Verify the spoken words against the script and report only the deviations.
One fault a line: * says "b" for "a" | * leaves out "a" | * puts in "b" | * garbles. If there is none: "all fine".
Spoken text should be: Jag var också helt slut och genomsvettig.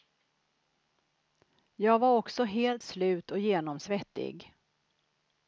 all fine